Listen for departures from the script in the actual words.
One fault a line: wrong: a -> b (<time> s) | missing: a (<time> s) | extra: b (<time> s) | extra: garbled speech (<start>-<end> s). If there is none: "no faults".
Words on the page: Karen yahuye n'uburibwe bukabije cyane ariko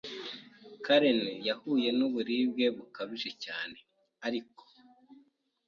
no faults